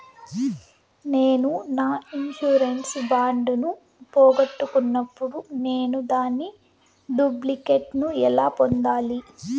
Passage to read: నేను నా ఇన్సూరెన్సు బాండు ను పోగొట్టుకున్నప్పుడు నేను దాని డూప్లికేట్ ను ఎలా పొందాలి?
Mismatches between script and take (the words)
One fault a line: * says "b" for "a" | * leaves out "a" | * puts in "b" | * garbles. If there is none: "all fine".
all fine